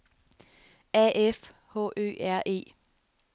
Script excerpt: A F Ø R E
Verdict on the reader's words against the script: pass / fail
fail